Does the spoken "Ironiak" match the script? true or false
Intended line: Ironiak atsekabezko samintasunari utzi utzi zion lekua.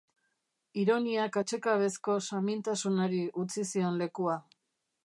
true